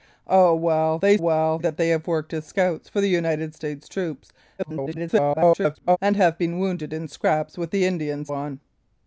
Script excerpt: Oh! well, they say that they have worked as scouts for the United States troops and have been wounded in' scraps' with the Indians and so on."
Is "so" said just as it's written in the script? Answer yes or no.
no